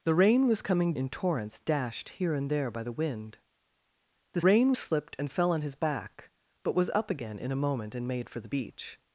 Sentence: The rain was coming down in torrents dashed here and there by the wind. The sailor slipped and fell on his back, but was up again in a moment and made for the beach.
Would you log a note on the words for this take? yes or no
yes